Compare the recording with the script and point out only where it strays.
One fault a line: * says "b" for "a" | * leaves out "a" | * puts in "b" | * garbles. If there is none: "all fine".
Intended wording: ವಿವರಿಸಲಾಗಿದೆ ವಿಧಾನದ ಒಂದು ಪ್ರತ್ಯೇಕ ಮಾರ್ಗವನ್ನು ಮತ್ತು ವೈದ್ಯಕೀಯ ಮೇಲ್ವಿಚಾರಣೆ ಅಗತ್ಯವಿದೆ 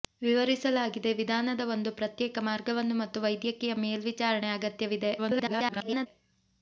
* garbles